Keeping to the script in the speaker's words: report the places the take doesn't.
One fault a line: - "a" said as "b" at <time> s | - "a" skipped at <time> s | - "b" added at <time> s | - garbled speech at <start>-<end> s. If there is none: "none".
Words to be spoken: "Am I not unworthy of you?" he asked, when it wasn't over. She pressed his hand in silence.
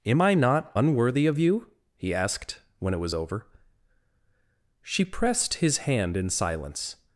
- "wasn't" said as "was" at 3.0 s